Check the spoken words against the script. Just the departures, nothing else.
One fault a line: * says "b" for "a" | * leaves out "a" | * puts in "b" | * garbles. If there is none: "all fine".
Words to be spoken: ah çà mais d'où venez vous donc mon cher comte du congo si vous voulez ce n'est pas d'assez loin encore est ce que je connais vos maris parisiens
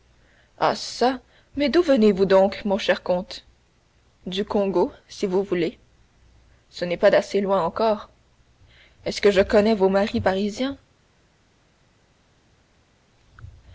all fine